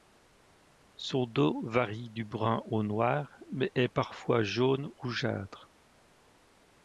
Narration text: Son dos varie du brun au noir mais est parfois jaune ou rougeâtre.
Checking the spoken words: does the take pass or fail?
fail